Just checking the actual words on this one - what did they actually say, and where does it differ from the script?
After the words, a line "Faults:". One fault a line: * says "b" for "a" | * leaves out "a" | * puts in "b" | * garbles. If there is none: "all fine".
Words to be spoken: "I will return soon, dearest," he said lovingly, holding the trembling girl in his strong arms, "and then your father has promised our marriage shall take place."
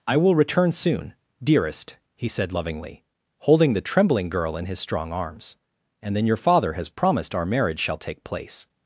"I will return soon, dearest," he said lovingly, holding the trembling girl in his strong arms, "and then your father has promised our marriage shall take place."
Faults:
all fine